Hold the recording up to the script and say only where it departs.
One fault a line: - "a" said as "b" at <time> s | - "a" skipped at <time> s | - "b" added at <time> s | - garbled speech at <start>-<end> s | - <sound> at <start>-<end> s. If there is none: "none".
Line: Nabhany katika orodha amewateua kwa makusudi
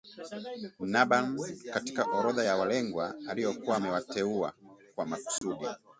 - "ya walengwa aliokuwa" added at 2.4 s
- dropout at 5.4-5.4 s